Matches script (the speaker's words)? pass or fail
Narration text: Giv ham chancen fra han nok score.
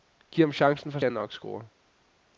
pass